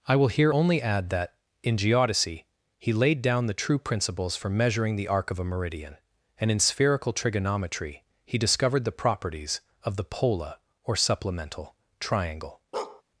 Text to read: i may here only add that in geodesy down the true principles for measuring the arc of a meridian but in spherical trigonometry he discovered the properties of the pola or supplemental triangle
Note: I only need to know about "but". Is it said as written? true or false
false